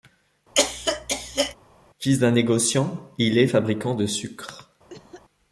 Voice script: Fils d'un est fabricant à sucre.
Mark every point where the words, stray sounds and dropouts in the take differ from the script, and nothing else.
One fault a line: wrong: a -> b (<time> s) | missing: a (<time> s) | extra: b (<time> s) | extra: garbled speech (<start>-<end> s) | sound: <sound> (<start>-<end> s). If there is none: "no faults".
sound: cough (0.5-1.5 s)
extra: négociant il (2.3 s)
wrong: à -> de (4.0 s)
sound: cough (4.9-5.2 s)